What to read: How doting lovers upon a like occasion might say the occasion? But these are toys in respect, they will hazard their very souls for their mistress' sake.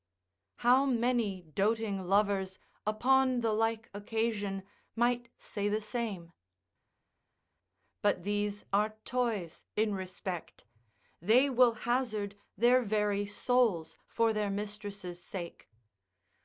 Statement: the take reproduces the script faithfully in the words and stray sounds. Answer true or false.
false